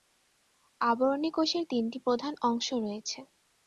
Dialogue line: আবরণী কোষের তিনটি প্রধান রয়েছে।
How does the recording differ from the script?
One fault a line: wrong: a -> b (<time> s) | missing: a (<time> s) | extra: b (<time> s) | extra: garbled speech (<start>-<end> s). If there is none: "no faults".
extra: অংশ (2.4 s)